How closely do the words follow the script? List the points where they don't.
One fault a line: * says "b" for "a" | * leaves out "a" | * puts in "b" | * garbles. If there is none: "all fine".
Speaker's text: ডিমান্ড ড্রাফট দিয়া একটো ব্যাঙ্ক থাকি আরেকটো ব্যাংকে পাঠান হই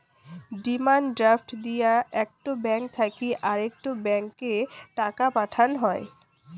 * puts in "টাকা"